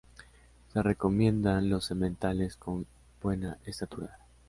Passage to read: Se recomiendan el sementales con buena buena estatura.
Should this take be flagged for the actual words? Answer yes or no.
yes